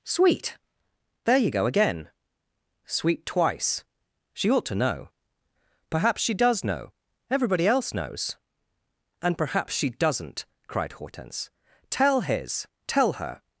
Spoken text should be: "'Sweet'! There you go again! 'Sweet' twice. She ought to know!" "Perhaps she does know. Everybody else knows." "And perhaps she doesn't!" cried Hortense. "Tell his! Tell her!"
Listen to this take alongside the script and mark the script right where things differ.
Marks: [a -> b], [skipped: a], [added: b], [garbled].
"'Sweet'! There you go again! 'Sweet' twice. She ought to know!" "Perhaps she does know. Everybody else knows." "And perhaps she doesn't!" cried Hortense. "Tell his! Tell her!"